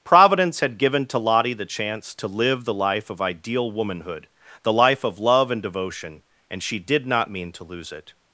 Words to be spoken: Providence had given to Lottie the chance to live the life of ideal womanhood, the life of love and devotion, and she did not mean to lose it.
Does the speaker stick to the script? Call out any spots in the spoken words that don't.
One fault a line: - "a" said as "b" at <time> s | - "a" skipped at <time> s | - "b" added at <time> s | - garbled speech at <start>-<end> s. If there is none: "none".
none